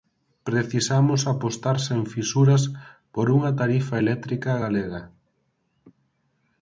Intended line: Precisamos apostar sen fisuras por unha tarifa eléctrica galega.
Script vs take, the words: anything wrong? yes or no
no